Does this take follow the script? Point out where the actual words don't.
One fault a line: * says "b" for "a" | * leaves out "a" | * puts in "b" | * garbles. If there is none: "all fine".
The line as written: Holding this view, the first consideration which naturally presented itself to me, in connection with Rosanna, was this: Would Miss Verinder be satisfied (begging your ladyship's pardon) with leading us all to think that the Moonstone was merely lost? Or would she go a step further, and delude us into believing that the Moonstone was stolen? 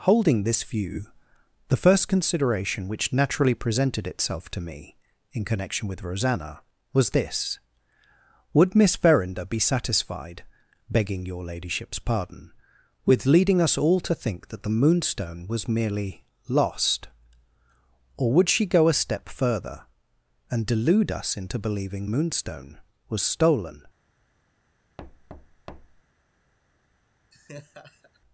* leaves out "that the"